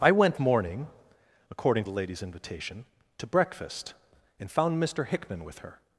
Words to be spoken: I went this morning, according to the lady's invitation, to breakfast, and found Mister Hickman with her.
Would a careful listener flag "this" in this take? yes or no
yes